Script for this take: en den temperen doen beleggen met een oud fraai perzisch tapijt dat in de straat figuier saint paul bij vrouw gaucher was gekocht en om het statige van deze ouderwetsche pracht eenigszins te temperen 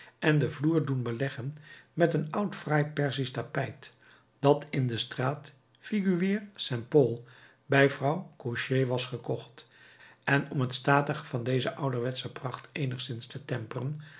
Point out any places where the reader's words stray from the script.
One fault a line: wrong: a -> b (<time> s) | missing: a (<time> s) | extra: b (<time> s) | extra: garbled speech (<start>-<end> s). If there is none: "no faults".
wrong: temperen -> vloer (0.5 s)